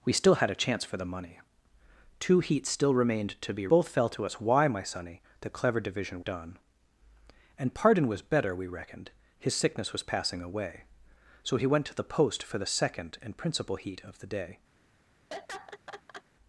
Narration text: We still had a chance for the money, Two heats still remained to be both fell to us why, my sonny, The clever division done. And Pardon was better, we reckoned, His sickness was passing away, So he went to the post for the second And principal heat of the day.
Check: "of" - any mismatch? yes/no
no